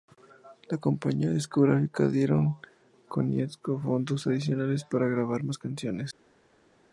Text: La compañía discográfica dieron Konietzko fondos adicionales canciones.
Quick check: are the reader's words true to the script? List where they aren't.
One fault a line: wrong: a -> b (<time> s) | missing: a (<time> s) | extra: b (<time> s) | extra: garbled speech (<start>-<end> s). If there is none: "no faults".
extra: para grabar más (4.8 s)